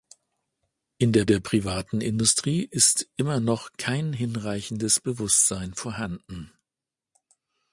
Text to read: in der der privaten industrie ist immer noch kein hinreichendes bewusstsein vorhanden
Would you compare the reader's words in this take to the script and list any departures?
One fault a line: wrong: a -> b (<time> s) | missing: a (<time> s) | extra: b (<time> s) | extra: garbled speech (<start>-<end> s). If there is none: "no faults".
no faults